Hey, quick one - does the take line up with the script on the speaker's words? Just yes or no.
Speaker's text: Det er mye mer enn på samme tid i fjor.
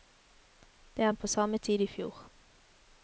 no